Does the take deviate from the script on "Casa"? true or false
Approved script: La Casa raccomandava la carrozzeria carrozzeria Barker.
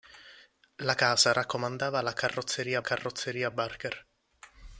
false